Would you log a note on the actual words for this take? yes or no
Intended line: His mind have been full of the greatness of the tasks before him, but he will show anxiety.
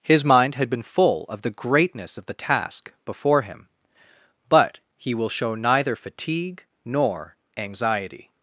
yes